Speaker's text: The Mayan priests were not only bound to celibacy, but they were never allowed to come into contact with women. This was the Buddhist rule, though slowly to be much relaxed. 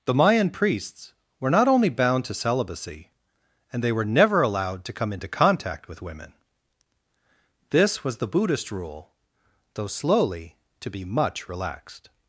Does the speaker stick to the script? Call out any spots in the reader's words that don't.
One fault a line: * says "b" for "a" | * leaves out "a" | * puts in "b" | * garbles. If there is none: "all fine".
* says "and" for "but"